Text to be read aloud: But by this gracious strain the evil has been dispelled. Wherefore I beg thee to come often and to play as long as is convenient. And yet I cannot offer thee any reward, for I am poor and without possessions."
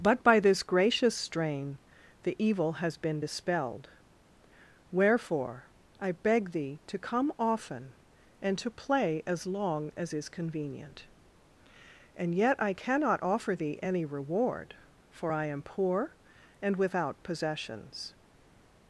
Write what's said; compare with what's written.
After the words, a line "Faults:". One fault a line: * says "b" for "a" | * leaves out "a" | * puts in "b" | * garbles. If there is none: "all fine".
But by this gracious strain the evil has been dispelled. Wherefore I beg thee to come often and to play as long as is convenient. And yet I cannot offer thee any reward, for I am poor and without possessions."
Faults:
all fine